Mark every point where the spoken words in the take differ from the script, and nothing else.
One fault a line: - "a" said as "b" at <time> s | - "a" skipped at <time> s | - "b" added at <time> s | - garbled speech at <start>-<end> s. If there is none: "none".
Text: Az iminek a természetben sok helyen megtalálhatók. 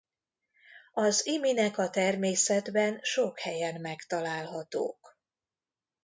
none